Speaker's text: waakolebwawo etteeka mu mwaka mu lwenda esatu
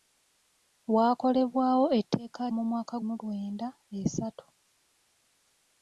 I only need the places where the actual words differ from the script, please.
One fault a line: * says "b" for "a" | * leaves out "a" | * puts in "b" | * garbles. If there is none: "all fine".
all fine